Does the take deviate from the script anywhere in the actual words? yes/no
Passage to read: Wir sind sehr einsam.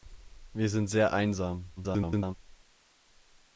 yes